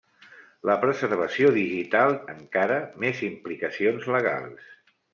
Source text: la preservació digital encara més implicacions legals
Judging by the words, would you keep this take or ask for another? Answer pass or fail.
pass